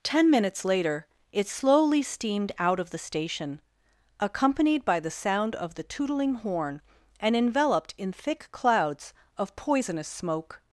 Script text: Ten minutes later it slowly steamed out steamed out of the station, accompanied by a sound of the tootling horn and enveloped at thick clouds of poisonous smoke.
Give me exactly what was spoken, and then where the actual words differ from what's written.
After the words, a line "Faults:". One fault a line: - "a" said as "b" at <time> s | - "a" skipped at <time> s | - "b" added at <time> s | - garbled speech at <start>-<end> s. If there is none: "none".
Ten minutes later it slowly steamed out of the station, accompanied by the sound of the tootling horn and enveloped in thick clouds of poisonous smoke.
Faults:
- "steamed out" skipped at 2.8 s
- "a" said as "the" at 5.0 s
- "at" said as "in" at 8.0 s